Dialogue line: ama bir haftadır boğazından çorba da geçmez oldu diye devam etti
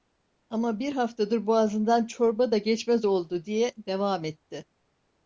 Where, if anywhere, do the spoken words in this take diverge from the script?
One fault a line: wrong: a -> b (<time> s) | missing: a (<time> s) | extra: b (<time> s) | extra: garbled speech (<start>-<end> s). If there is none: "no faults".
no faults